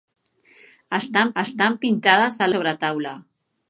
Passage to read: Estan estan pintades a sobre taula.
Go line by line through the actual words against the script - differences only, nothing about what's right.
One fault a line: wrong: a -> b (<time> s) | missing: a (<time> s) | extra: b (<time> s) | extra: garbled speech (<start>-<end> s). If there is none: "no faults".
no faults